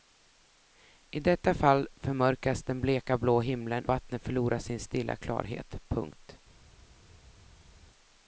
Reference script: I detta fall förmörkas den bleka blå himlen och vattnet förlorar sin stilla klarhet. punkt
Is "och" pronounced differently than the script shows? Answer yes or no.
yes